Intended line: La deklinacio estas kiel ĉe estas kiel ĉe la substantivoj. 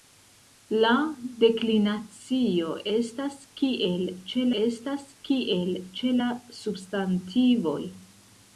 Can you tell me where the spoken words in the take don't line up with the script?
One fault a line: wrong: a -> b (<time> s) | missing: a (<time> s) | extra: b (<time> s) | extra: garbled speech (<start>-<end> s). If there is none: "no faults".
no faults